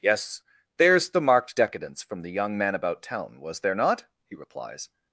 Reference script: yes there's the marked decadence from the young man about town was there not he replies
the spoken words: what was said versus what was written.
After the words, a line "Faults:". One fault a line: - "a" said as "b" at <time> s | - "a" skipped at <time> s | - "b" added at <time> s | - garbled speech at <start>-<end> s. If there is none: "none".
yes there's the marked decadence from the young man about town was there not he replies
Faults:
none